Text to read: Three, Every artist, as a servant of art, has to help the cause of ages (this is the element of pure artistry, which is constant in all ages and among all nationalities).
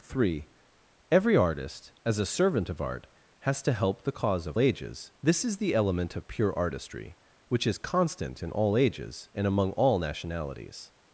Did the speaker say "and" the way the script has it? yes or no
yes